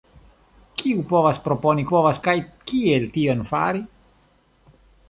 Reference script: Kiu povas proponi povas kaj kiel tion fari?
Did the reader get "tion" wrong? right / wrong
right